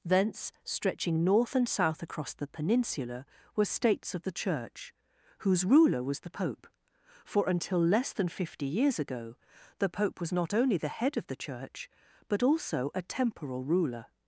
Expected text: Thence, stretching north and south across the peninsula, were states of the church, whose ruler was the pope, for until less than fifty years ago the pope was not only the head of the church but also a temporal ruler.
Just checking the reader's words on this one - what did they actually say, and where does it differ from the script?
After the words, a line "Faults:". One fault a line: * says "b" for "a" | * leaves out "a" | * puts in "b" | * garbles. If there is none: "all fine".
Thence, stretching north and south across the peninsula, were states of the church, whose ruler was the pope, for until less than fifty years ago the pope was not only the head of the church but also a temporal ruler.
Faults:
all fine